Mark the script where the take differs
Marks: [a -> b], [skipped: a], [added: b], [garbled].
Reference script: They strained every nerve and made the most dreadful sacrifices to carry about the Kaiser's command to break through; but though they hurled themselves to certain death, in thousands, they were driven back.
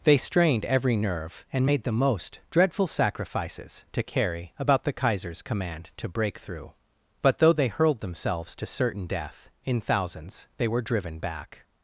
They strained every nerve and made the most dreadful sacrifices to carry about the Kaiser's command to break through; but though they hurled themselves to certain death, in thousands, they were driven back.